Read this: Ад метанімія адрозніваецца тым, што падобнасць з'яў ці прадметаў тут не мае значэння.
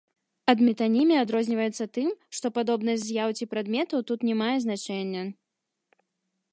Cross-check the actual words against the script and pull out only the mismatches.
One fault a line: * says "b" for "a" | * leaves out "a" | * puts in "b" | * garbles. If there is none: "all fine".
all fine